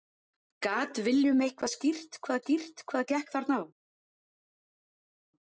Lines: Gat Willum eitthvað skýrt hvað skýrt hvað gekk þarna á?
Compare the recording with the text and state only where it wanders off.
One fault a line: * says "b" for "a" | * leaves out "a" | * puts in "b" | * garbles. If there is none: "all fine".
all fine